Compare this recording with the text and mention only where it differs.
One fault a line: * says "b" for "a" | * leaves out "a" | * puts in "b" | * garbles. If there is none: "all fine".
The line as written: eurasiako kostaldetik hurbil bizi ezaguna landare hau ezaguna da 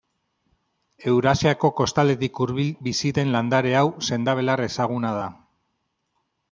* says "den" for "ezaguna"
* puts in "sendabelar"